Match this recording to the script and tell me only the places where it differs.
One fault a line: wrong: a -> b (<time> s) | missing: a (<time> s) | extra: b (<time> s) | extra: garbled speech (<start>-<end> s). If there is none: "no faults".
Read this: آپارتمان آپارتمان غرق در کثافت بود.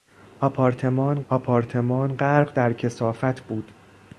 no faults